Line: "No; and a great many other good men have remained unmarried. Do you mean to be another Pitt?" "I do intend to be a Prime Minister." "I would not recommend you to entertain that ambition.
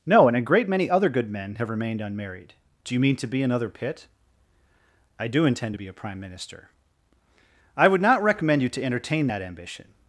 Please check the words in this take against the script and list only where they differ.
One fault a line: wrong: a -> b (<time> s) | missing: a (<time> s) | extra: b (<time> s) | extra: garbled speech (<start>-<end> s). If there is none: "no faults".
no faults